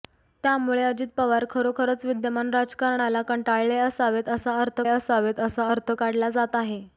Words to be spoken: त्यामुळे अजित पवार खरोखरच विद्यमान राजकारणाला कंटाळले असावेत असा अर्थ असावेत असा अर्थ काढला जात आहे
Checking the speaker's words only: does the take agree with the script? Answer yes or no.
yes